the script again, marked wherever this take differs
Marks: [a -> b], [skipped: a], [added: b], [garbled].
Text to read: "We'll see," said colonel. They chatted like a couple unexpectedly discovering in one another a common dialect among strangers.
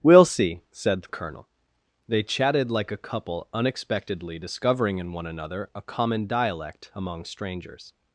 "We'll see," said colonel. They chatted like a couple unexpectedly discovering in one another a common dialect among strangers.